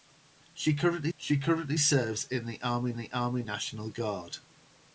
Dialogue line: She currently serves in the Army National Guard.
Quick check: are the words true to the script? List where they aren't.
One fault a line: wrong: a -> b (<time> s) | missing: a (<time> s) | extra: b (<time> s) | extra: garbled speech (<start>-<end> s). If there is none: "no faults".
extra: she currently (1.2 s)
extra: the Army (3.0 s)